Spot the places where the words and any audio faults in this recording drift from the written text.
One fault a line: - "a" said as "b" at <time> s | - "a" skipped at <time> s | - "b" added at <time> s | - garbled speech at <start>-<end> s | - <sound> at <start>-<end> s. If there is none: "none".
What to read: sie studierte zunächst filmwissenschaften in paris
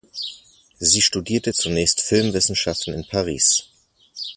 none